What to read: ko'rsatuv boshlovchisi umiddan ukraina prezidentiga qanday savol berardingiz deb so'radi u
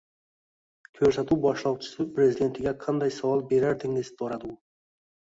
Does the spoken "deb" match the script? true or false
false